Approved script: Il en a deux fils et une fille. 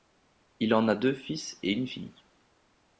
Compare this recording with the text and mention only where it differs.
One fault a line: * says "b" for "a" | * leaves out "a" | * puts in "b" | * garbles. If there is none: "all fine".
all fine